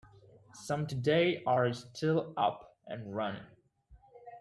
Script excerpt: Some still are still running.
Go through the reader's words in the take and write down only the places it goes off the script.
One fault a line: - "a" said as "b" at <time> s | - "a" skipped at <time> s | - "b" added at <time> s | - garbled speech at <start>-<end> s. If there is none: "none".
- "still" said as "today" at 0.9 s
- "up and" added at 2.4 s